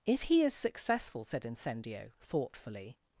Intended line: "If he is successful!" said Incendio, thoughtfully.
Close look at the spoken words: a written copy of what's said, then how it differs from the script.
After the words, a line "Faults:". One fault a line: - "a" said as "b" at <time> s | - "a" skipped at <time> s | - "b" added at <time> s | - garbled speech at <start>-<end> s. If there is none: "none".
"If he is successful!" said Incendio, thoughtfully.
Faults:
none